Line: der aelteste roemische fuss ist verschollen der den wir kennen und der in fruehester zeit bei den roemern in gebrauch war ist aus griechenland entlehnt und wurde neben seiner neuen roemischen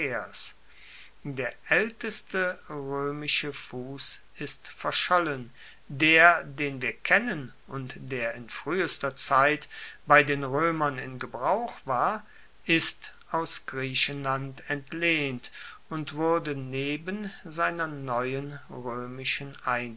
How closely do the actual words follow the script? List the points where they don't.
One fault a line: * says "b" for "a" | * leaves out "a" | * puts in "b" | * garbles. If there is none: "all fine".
all fine